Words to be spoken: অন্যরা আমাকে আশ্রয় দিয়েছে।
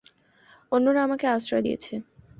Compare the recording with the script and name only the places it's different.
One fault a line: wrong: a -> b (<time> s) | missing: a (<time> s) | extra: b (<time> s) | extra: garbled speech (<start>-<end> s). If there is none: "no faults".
no faults